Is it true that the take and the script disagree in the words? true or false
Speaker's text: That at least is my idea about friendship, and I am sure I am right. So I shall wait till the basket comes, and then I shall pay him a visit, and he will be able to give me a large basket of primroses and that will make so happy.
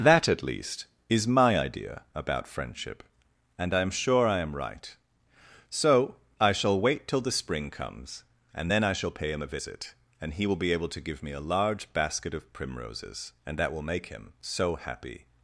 true